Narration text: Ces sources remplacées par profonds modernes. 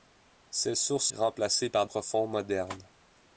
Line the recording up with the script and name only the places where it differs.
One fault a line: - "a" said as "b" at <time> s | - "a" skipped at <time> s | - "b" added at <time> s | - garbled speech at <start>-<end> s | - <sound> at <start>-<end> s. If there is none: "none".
none